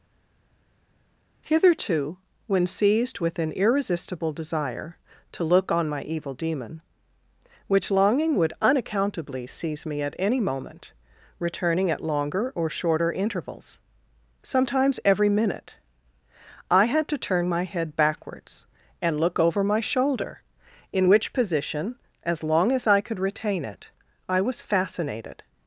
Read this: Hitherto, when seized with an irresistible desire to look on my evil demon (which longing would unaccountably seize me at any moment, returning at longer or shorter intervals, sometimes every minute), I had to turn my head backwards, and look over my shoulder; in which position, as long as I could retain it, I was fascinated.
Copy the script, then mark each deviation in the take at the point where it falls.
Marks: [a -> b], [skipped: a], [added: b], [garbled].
Hitherto, when seized with an irresistible desire to look on my evil demon (which longing would unaccountably seize me at any moment, returning at longer or shorter intervals, sometimes every minute), I had to turn my head backwards, and look over my shoulder; in which position, as long as I could retain it, I was fascinated.